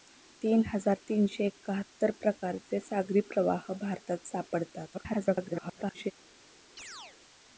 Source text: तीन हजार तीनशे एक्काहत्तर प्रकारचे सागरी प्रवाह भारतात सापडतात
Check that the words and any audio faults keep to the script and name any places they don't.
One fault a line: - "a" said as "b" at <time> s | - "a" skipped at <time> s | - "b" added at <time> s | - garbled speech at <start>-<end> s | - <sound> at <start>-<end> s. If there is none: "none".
- garbled speech at 4.9-6.1 s
- chirp at 6.8-7.2 s